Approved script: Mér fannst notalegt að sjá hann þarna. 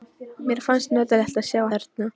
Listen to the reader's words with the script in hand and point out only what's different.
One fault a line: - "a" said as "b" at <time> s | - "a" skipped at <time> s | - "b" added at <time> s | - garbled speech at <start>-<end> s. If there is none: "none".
- "hann" skipped at 1.6 s